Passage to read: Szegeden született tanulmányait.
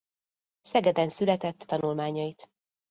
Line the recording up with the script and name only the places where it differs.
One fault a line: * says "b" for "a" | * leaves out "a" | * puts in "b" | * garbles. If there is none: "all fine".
all fine